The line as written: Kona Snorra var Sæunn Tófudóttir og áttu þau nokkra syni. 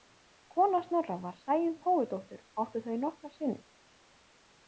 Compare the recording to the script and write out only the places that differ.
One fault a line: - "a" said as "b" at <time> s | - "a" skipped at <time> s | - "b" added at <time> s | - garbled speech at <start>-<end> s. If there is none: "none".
none